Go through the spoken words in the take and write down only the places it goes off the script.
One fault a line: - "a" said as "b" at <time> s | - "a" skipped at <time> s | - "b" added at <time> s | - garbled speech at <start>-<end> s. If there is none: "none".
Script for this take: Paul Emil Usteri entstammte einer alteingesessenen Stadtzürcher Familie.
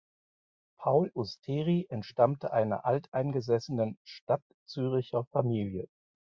- "Emil" skipped at 1.1 s